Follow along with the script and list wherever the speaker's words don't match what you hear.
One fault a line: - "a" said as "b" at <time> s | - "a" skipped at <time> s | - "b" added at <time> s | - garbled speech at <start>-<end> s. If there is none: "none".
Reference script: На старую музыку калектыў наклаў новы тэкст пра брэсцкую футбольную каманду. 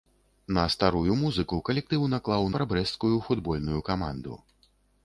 - "новы тэкст" skipped at 2.5 s